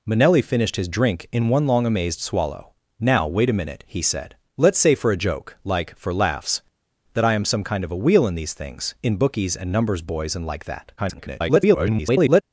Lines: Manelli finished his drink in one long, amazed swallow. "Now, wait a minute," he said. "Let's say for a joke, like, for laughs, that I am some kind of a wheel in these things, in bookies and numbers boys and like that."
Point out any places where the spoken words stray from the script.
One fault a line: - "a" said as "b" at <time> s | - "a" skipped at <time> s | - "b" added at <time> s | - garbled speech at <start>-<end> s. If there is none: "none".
- garbled speech at 11.0-12.4 s